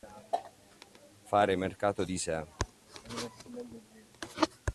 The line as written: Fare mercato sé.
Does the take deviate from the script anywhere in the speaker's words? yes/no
yes